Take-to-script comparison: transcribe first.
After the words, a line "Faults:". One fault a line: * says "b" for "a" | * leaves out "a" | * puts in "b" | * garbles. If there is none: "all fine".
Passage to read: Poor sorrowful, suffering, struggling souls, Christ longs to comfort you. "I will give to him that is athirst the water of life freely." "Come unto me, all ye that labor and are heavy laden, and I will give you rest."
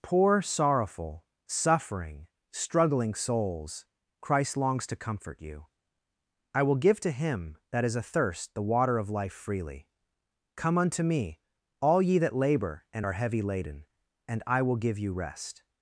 Poor sorrowful, suffering, struggling souls, Christ longs to comfort you. "I will give to him that is athirst the water of life freely." "Come unto me, all ye that labor and are heavy laden, and I will give you rest."
Faults:
all fine